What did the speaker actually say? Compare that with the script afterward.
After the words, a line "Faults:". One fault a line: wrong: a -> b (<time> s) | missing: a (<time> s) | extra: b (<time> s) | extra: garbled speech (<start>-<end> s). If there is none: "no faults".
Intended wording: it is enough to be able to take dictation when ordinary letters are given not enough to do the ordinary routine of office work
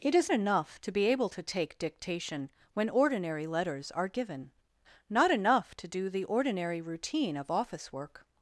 it is enough to be able to take dictation when ordinary letters are given not enough to do the ordinary routine of office work
Faults:
no faults